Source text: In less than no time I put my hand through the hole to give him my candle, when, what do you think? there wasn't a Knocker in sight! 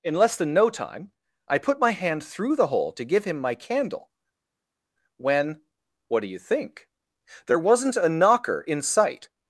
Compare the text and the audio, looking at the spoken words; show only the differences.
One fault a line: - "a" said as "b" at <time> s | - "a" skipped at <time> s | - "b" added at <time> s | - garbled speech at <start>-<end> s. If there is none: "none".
none